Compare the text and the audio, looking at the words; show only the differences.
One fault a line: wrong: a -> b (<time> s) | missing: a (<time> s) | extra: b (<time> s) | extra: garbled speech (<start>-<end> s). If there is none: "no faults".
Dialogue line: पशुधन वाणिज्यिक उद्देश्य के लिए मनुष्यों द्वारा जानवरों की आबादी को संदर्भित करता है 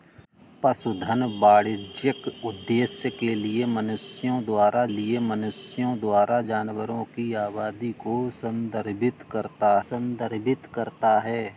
extra: लिए मनुष्यों द्वारा (4.9 s)
extra: संदर्भित करता (9.8 s)